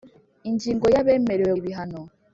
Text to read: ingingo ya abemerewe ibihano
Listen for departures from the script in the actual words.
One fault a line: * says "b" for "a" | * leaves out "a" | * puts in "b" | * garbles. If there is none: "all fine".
all fine